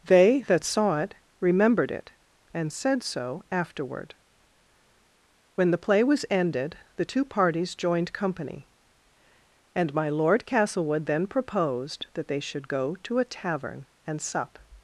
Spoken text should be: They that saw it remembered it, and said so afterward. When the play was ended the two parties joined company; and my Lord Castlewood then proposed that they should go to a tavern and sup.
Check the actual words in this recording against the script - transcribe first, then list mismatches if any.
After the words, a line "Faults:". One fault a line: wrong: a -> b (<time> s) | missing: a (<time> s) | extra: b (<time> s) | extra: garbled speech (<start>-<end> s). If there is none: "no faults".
They that saw it remembered it, and said so afterward. When the play was ended the two parties joined company; and my Lord Castlewood then proposed that they should go to a tavern and sup.
Faults:
no faults